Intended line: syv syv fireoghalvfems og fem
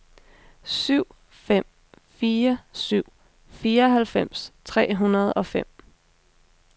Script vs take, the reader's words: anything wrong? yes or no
yes